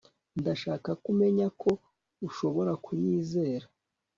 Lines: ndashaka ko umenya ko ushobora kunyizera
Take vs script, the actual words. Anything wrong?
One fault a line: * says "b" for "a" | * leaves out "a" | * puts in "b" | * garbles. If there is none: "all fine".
all fine